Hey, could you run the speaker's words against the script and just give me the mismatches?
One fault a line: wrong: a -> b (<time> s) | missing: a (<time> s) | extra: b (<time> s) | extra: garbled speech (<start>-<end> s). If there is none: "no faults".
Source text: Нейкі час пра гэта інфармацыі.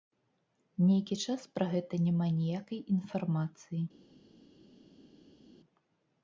extra: няма ніякай (2.0 s)